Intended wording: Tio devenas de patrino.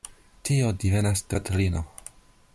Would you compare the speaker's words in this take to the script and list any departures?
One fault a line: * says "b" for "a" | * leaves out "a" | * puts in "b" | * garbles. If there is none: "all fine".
all fine